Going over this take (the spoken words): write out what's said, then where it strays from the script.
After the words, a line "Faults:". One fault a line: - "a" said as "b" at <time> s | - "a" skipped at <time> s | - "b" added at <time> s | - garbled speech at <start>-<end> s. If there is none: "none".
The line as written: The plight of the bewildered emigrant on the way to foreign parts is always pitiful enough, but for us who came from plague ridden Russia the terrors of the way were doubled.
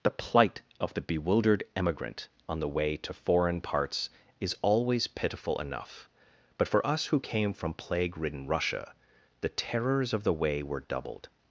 The plight of the bewildered emigrant on the way to foreign parts is always pitiful enough, but for us who came from plague ridden Russia the terrors of the way were doubled.
Faults:
none